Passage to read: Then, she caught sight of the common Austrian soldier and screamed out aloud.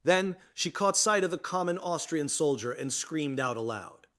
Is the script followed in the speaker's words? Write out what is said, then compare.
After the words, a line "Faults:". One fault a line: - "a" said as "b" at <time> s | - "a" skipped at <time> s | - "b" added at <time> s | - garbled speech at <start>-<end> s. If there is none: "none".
Then, she caught sight of the common Austrian soldier and screamed out aloud.
Faults:
none